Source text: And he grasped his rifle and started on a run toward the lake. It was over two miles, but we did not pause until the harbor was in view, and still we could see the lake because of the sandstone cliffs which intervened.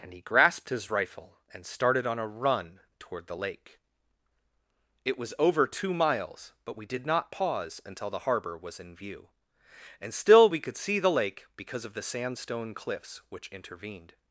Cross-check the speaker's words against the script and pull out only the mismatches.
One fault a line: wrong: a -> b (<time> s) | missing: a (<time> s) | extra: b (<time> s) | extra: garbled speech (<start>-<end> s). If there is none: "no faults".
no faults